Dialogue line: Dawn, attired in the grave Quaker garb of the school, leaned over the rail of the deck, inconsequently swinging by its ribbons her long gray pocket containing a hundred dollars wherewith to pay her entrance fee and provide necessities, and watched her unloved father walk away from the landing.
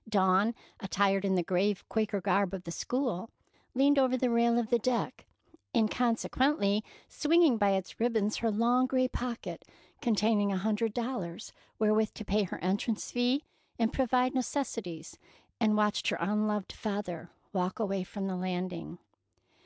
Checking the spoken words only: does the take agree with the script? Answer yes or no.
yes